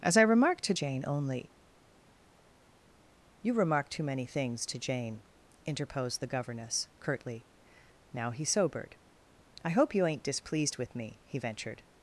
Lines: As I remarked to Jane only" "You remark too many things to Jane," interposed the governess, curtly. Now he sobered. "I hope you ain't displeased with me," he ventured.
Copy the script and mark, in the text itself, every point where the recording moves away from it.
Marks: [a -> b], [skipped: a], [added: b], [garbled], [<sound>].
As I remarked to Jane only" "You remark too many things to Jane," interposed the governess, curtly. Now he sobered. "I hope you ain't displeased with me," he ventured.